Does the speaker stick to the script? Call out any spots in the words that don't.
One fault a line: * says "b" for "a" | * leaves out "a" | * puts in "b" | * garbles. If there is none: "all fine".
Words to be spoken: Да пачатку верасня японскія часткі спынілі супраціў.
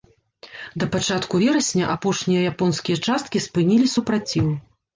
* puts in "апошнія"